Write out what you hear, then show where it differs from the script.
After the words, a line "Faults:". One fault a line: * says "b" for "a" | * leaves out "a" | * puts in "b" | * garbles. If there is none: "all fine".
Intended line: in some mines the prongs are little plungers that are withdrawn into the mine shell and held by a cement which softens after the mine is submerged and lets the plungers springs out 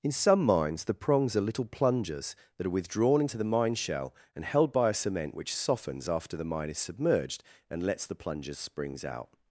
in some mines the prongs are little plungers that are withdrawn into the mine shell and held by a cement which softens after the mine is submerged and lets the plungers springs out
Faults:
all fine